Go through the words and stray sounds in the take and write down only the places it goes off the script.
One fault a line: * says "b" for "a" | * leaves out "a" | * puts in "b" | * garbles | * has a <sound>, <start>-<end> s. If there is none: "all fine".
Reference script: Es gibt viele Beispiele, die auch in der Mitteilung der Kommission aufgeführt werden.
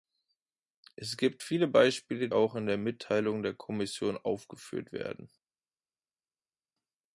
* leaves out "die"